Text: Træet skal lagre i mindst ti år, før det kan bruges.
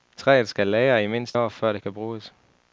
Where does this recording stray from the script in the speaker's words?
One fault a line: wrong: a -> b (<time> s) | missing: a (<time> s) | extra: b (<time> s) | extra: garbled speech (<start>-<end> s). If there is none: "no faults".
missing: ti (1.4 s)